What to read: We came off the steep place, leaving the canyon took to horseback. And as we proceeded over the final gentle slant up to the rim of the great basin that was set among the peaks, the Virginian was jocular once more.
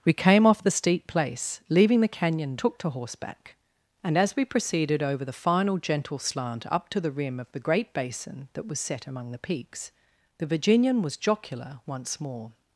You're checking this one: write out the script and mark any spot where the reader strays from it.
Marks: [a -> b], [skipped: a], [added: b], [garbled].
We came off the steep place, leaving the canyon took to horseback. And as we proceeded over the final gentle slant up to the rim of the great basin that was set among the peaks, the Virginian was jocular once more.